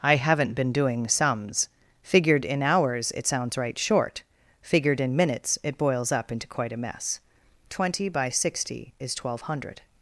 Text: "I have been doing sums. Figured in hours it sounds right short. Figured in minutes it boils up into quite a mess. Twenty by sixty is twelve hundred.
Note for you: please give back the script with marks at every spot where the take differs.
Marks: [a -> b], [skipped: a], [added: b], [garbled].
"I [have -> haven't] been doing sums. Figured in hours it sounds right short. Figured in minutes it boils up into quite a mess. Twenty by sixty is twelve hundred.